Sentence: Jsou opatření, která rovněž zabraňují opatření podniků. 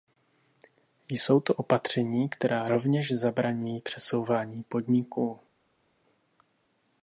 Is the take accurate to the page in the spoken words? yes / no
no